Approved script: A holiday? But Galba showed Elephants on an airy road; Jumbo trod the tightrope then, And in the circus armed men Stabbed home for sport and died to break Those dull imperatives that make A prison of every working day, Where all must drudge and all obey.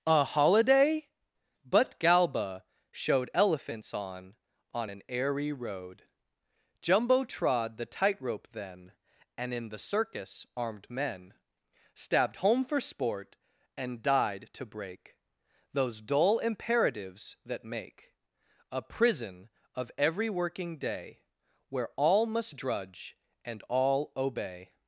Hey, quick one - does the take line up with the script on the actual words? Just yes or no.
no